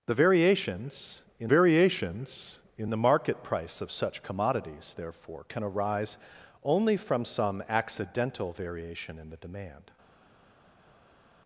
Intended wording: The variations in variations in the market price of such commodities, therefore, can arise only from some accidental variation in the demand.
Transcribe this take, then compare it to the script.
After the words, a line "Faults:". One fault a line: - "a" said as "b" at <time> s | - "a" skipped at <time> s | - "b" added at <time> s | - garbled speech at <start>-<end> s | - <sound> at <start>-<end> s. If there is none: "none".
The variations in variations in the market price of such commodities, therefore, can arise only from some accidental variation in the demand.
Faults:
none